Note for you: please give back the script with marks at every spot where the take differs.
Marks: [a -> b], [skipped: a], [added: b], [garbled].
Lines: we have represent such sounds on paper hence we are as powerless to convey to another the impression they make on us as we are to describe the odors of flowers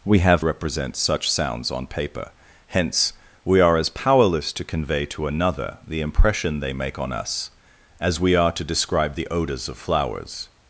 we have represent such sounds on paper hence we are as powerless to convey to another the impression they make on us as we are to describe the odors of flowers